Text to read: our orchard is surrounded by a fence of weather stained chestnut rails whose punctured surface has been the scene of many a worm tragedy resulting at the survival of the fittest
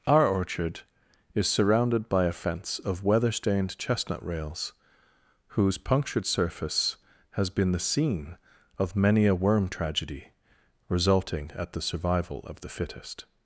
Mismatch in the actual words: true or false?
false